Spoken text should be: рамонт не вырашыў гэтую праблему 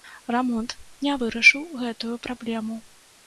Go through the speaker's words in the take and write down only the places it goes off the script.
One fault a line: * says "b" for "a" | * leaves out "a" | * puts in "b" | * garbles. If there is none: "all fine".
all fine